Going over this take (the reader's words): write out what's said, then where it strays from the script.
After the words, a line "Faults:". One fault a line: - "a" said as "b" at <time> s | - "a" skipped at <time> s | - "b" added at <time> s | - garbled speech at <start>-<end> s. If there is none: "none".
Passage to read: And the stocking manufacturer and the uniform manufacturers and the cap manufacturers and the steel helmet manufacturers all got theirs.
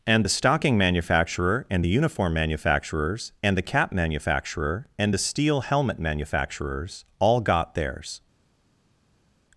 And the stocking manufacturer and the uniform manufacturers and the cap manufacturer and the steel helmet manufacturers all got theirs.
Faults:
- "manufacturers" said as "manufacturer" at 3.9 s